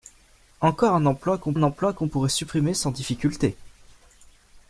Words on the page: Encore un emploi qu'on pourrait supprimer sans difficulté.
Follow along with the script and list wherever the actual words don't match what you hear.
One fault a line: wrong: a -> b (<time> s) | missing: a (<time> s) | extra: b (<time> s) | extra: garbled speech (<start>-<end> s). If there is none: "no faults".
extra: un emploi qu'on (1.5 s)